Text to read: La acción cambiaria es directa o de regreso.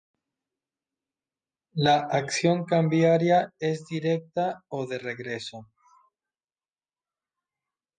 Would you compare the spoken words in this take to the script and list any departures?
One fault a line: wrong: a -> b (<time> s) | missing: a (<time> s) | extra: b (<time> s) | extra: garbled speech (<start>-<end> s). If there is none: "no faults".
no faults